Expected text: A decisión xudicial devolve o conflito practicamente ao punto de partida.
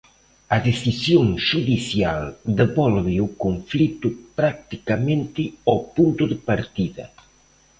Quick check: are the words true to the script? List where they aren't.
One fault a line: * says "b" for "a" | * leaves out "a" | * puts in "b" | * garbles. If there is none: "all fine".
all fine